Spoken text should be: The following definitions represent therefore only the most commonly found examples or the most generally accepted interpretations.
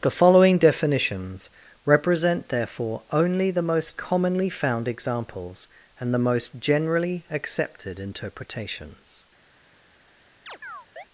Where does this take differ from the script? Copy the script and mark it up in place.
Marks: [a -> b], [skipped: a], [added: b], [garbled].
The following definitions represent therefore only the most commonly found examples [or -> and] the most generally accepted interpretations.